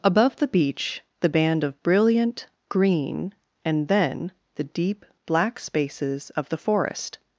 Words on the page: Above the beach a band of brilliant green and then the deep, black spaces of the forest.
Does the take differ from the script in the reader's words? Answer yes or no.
yes